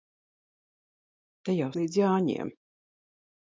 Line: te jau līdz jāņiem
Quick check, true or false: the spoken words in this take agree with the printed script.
true